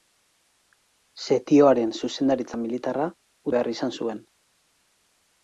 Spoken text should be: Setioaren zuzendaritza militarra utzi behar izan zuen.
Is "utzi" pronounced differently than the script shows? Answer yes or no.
yes